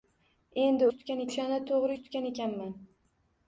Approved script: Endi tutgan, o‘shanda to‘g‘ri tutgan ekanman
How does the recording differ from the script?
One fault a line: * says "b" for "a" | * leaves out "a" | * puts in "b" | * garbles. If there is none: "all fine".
all fine